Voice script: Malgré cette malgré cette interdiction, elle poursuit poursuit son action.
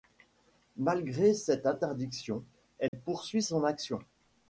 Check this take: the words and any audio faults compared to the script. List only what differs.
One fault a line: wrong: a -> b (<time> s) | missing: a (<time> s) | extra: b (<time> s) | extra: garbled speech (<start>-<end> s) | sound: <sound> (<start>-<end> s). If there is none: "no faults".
missing: malgré cette (1.7 s)
sound: dropout (2.9-2.9 s)
missing: poursuit (3.4 s)